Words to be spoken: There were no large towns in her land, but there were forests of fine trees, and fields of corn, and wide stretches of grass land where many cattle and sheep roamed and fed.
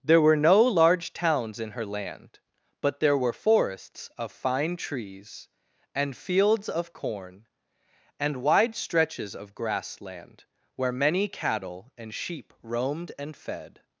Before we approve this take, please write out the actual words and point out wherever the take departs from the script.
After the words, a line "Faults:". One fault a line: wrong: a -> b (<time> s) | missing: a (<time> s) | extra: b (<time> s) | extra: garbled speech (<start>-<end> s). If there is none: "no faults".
There were no large towns in her land, but there were forests of fine trees, and fields of corn, and wide stretches of grass land where many cattle and sheep roamed and fed.
Faults:
no faults